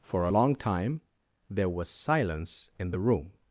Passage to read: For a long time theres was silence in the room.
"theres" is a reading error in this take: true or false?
true